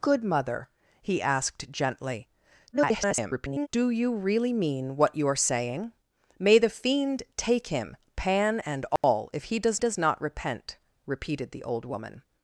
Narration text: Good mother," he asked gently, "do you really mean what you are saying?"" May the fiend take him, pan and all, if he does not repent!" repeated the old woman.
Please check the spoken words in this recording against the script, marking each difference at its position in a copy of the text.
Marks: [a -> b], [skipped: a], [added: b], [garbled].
Good mother," he asked gently, [garbled] "do you really mean what you are saying?"" May the fiend take him, pan and all, if he does [added: does] not repent!" repeated the old woman.